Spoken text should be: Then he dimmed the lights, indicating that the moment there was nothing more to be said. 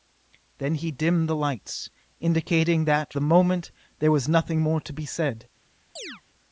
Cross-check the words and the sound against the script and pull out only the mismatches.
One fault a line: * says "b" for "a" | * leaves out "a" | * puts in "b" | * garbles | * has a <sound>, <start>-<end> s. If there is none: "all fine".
* has a chirp, 6.0-6.2 s